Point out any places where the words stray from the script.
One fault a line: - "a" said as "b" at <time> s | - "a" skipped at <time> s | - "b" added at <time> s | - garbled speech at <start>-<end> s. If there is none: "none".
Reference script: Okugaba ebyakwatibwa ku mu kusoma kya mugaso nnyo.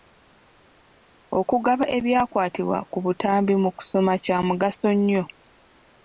- "butambi" added at 3.0 s